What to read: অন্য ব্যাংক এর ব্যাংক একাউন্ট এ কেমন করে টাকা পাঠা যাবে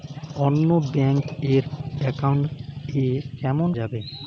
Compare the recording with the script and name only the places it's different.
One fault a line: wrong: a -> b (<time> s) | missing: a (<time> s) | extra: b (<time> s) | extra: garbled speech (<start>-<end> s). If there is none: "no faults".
missing: ব্যাংক (1.6 s)
missing: করে টাকা পাঠা (3.7 s)